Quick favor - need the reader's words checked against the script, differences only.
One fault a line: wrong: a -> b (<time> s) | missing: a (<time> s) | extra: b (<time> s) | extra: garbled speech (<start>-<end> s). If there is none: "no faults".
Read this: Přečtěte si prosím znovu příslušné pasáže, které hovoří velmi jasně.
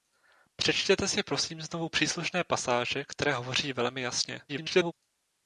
extra: garbled speech (4.5-4.9 s)